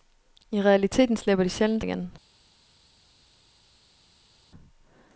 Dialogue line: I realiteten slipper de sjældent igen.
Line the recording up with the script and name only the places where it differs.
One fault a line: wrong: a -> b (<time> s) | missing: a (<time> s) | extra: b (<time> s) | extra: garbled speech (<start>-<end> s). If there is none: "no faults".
no faults